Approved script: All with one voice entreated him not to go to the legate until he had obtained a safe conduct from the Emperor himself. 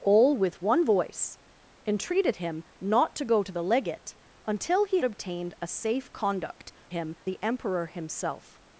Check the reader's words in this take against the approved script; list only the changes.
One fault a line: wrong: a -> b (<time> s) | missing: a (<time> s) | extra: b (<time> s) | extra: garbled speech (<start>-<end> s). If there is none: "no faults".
missing: had (5.0 s)
wrong: from -> him (6.9 s)